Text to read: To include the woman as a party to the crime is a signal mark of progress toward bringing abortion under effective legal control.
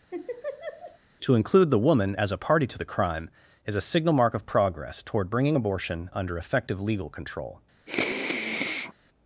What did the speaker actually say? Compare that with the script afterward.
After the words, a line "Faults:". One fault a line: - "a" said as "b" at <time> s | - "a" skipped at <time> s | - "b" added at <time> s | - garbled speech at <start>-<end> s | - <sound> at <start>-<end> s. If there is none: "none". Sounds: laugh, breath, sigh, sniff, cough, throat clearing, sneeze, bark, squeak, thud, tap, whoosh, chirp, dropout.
To include the woman as a party to the crime is a signal mark of progress toward bringing abortion under effective legal control.
Faults:
- laugh at 0.1-1.0 s
- sniff at 7.9-8.9 s